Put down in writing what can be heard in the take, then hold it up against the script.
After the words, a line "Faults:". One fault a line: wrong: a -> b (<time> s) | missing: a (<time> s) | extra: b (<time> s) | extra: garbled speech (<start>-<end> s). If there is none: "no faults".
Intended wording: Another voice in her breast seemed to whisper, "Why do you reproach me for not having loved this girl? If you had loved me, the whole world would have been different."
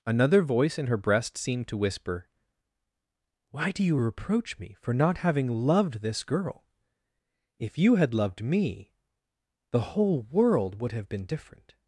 Another voice in her breast seemed to whisper, "Why do you reproach me for not having loved this girl? If you had loved me, the whole world would have been different."
Faults:
no faults